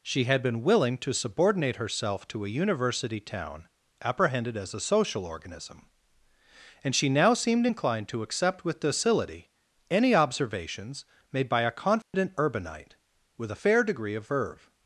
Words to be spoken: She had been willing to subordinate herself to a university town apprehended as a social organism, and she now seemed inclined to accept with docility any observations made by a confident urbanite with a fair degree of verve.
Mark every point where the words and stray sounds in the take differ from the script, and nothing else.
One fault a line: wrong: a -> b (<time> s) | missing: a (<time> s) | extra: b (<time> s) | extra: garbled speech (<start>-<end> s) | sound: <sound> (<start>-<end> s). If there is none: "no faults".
sound: dropout (12.0-12.1 s)